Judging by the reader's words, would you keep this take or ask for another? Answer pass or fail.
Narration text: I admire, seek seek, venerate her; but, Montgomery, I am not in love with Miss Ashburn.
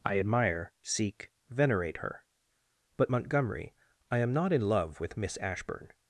fail